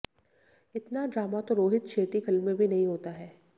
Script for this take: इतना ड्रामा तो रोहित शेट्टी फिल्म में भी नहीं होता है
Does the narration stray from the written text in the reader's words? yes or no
no